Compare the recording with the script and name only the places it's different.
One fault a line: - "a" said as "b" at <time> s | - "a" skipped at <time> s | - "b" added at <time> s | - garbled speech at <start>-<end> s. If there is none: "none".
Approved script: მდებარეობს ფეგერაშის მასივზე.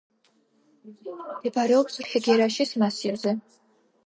none